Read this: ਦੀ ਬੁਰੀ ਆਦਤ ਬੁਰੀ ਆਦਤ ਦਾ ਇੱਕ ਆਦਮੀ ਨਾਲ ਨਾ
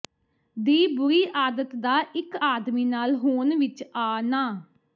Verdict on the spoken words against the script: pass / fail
fail